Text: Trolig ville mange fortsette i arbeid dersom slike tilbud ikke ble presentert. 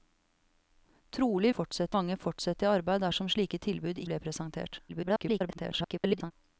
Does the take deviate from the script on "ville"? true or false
true